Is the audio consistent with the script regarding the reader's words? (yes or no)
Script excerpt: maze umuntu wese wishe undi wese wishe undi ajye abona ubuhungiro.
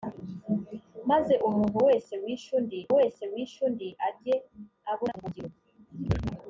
yes